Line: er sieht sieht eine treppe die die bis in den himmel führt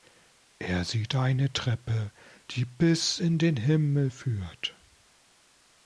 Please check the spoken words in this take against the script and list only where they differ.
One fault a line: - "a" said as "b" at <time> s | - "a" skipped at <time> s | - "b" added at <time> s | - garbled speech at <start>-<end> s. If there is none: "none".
- "sieht" skipped at 1.1 s
- "die" skipped at 2.6 s